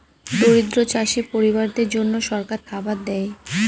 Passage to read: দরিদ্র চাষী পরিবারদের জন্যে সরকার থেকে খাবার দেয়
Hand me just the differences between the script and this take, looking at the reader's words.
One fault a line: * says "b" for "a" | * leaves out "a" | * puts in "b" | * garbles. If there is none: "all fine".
* leaves out "থেকে"